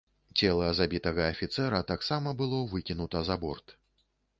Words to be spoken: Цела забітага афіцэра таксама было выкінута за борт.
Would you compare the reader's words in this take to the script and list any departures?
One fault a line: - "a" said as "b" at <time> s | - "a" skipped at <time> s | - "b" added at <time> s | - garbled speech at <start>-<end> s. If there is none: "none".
none